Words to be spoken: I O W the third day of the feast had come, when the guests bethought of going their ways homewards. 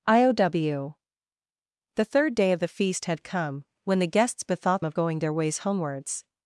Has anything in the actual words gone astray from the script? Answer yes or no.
no